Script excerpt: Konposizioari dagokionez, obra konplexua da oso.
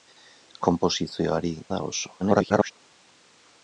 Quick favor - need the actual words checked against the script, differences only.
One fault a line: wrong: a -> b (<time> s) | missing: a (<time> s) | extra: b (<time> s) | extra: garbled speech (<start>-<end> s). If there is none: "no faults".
missing: dagokionez obra konplexua (1.5 s)
extra: garbled speech (2.2-2.7 s)